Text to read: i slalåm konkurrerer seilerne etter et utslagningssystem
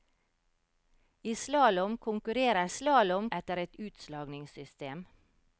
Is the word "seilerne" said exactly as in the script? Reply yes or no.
no